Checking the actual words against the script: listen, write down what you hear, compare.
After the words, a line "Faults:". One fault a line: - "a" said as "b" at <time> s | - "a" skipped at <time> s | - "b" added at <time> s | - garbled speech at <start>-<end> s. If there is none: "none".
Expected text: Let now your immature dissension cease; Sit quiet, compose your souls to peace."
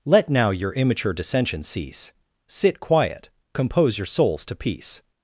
Let now your immature dissension cease; Sit quiet, compose your souls to peace."
Faults:
none